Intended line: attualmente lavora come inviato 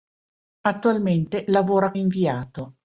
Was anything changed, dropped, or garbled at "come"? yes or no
yes